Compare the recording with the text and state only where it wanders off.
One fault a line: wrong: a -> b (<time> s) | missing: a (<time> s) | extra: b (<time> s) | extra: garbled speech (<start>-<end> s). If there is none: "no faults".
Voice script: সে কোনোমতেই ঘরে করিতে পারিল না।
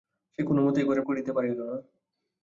no faults